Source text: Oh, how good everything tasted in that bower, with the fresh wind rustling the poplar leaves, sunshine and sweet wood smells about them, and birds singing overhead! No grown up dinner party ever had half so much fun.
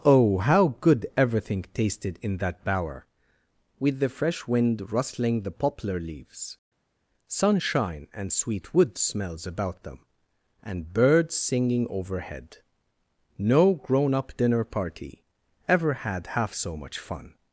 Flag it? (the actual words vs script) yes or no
no